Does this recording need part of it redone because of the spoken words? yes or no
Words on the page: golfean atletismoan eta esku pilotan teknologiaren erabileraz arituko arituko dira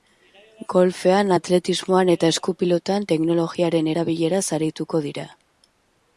yes